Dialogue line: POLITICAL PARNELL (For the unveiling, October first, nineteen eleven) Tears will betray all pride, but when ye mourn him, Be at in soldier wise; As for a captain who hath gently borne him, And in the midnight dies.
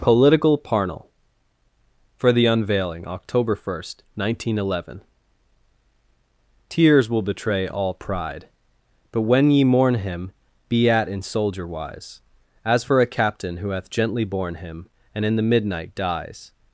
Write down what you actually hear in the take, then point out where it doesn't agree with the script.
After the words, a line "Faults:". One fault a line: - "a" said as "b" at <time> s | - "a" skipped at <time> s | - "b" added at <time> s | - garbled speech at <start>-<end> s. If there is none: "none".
POLITICAL PARNELL (For the unveiling, October first, nineteen eleven) Tears will betray all pride, but when ye mourn him, Be at in soldier wise; As for a captain who hath gently borne him, And in the midnight dies.
Faults:
none